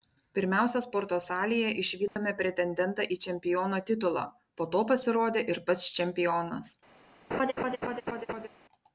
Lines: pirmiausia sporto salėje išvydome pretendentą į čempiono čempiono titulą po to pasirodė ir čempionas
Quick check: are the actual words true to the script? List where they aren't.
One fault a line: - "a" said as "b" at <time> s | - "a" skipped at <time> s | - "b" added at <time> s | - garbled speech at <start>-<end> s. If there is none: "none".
- "čempiono" skipped at 3.8 s
- "pats" added at 5.7 s